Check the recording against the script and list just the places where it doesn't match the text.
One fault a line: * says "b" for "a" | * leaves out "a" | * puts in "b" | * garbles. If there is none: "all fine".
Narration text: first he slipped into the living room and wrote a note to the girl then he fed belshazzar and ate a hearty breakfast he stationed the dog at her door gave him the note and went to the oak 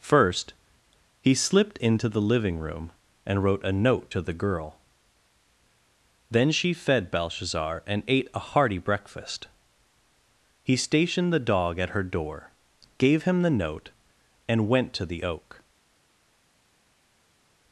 * says "she" for "he"